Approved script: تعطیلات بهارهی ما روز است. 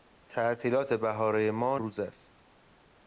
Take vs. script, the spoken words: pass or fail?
pass